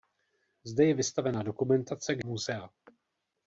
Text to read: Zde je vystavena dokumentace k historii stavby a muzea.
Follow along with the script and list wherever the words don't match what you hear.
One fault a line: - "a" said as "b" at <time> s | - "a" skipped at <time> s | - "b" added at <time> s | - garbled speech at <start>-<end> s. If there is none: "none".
- "historii stavby a" skipped at 2.2 s